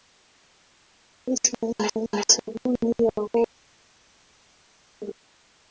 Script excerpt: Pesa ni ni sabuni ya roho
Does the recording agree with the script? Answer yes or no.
yes